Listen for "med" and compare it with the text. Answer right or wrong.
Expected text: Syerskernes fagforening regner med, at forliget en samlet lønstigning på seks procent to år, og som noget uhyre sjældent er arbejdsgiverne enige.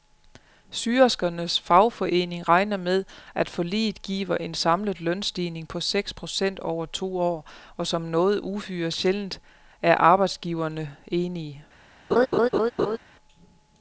right